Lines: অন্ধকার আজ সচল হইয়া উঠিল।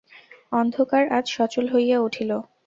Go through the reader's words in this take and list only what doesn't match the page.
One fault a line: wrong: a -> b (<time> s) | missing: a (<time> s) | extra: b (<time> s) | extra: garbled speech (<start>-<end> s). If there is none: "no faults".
no faults